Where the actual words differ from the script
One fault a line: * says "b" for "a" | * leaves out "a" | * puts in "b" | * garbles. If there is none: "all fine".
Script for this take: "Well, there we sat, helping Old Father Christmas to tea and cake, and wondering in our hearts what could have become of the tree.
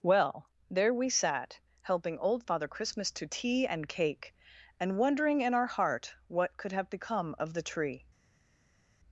* says "heart" for "hearts"